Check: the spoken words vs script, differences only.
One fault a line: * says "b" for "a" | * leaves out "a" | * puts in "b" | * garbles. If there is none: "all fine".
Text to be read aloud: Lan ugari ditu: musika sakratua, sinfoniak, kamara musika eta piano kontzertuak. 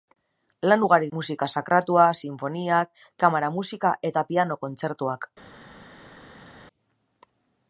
* leaves out "ditu"